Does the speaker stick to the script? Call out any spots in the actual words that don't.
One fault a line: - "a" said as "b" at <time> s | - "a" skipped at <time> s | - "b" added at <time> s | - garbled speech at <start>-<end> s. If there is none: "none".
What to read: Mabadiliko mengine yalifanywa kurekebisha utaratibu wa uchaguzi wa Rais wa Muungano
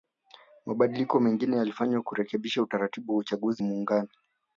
- "wa Rais wa" skipped at 3.6 s